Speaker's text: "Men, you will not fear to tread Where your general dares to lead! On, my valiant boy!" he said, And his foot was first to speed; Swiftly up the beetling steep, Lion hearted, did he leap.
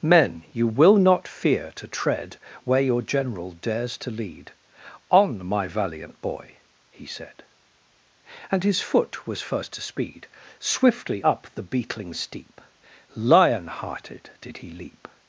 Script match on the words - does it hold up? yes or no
yes